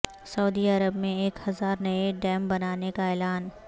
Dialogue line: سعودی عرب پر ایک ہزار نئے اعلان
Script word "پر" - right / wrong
wrong